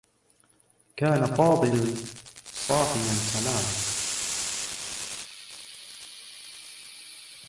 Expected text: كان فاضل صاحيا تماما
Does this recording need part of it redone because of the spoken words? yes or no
no